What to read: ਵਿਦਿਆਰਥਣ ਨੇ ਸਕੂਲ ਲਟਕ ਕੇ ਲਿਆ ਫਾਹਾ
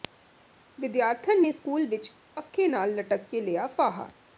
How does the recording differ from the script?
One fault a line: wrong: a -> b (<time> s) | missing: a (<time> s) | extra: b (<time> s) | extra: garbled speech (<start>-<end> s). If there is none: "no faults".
extra: ਵਿੱਚ ਪੱਖੇ ਨਾਲ (1.9 s)